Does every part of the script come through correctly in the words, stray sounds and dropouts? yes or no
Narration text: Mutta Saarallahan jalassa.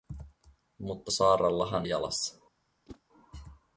no